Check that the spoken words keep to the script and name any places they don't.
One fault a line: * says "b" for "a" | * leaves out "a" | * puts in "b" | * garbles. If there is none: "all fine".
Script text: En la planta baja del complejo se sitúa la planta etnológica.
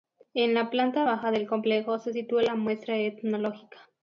* says "muestra" for "planta"